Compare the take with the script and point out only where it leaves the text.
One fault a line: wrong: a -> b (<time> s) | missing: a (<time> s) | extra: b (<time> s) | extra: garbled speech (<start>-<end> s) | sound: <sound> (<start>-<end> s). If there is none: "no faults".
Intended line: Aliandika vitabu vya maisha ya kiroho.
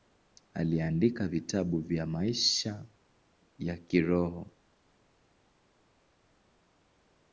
no faults